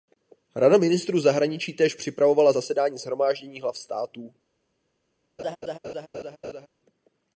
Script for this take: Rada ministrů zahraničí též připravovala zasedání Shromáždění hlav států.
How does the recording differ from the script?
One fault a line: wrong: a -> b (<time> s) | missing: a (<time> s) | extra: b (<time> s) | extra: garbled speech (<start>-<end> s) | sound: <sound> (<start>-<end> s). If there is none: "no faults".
sound: laugh (5.4-6.7 s)